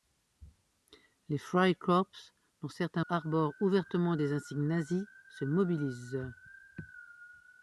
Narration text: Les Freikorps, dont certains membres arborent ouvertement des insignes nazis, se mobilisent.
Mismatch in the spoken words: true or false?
true